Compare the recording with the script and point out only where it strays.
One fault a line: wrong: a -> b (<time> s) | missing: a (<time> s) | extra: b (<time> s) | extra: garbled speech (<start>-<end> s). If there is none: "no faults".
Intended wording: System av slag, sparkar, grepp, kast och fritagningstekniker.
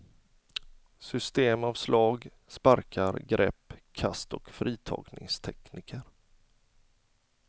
no faults